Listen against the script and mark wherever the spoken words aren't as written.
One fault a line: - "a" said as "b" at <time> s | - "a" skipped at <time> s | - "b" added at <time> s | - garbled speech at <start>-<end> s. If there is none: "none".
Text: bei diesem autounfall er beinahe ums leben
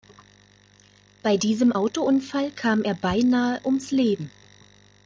- "kam" added at 2.6 s